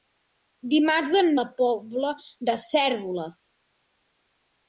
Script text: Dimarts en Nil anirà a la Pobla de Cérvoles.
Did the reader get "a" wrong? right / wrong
wrong